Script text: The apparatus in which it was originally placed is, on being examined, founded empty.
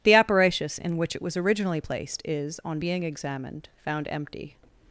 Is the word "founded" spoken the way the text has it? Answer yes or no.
no